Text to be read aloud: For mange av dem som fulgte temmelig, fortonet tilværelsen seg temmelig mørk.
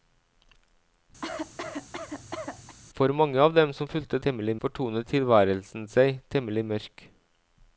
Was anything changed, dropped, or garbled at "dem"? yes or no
no